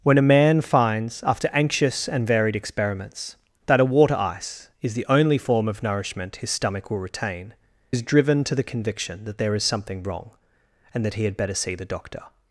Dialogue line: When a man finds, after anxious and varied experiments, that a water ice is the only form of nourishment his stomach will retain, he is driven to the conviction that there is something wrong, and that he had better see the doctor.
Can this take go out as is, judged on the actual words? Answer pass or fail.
fail